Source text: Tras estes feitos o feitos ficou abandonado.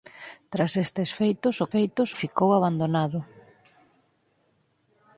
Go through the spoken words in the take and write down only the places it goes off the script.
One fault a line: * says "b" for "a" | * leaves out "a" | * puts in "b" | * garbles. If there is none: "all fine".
all fine